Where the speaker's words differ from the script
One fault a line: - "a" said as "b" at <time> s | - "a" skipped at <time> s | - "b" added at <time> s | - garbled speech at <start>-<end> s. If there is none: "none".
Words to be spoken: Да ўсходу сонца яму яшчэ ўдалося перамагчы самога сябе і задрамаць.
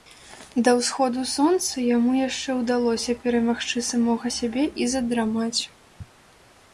none